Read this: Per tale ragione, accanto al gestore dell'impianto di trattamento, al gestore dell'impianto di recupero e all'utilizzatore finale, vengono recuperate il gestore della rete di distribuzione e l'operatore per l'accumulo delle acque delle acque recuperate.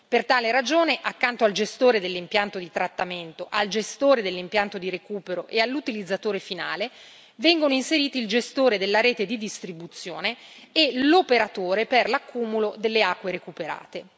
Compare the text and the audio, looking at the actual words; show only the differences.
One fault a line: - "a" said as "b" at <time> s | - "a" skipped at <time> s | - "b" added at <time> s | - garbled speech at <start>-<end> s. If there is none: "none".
- "recuperate" said as "inseriti" at 7.7 s
- "delle acque" skipped at 13.3 s